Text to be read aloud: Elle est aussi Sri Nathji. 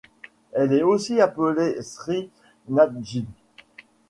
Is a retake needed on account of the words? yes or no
yes